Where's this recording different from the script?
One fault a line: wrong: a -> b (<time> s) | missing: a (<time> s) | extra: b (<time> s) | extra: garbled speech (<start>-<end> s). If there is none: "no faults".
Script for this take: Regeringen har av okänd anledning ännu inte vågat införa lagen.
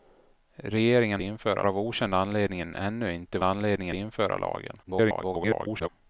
wrong: har -> införa (1.2 s)
wrong: vågat -> anledning (3.4 s)
extra: garbled speech (4.8-5.9 s)